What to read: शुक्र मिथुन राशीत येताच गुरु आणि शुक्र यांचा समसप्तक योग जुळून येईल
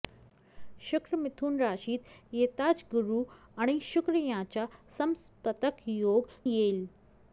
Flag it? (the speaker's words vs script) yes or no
yes